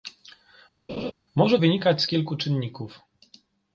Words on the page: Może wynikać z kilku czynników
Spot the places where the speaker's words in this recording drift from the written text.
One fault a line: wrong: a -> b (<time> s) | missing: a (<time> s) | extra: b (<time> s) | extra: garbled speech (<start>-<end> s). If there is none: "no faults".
no faults